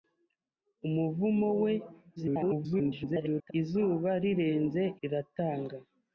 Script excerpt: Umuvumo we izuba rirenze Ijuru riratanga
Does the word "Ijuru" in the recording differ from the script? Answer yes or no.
yes